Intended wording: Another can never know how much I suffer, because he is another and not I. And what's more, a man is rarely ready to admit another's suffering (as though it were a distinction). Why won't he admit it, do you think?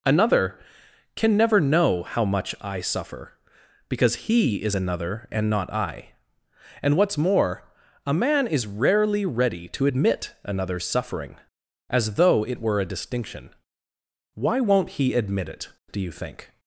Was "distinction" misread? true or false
false